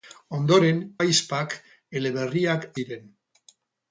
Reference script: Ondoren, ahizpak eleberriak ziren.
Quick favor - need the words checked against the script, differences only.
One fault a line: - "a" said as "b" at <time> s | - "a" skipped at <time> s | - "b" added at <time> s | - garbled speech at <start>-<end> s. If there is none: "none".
none